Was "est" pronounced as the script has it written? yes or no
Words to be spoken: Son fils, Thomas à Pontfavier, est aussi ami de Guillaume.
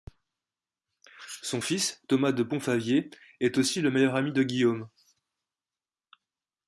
yes